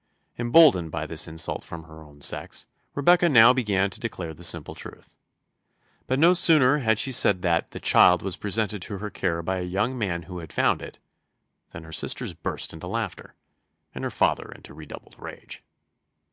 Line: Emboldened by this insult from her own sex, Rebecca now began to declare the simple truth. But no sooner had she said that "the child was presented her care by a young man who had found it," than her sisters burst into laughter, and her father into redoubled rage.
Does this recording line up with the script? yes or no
no